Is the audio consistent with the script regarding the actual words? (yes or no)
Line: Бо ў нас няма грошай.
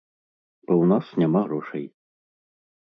yes